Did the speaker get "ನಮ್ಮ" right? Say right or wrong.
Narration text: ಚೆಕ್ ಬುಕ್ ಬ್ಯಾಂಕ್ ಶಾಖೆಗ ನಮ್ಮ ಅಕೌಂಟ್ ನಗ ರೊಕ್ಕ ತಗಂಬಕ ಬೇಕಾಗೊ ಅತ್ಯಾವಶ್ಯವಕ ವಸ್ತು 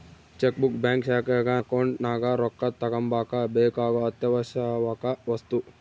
wrong